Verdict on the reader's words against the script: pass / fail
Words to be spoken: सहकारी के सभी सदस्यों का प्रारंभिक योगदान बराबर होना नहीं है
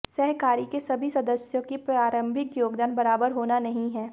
fail